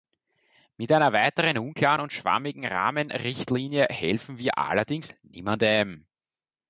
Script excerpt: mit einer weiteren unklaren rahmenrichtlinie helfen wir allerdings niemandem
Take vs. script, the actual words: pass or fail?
fail